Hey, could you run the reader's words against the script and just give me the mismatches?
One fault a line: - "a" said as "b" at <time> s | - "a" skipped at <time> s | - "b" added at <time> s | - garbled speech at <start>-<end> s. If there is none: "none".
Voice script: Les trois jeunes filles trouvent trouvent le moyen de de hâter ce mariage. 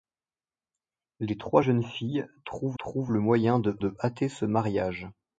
none